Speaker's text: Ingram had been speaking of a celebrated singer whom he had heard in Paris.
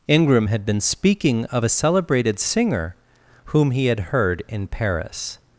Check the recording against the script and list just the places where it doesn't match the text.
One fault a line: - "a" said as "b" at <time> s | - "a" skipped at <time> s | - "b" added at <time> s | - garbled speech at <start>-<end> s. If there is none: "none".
none